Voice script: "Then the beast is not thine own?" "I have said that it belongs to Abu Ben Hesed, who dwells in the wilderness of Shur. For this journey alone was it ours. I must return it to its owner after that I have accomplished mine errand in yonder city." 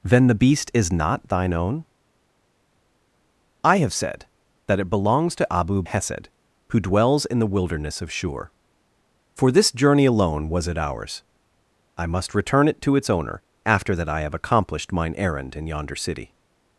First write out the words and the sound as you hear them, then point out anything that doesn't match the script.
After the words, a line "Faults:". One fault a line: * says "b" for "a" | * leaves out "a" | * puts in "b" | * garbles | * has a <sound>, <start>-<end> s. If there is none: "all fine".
"Then the beast is not thine own?" "I have said that it belongs to Abu Hesed, who dwells in the wilderness of Shur. For this journey alone was it ours. I must return it to its owner after that I have accomplished mine errand in yonder city."
Faults:
* leaves out "Ben"